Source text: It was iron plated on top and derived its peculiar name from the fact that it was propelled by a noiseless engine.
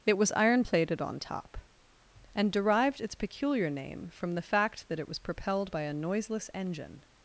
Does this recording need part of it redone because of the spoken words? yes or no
no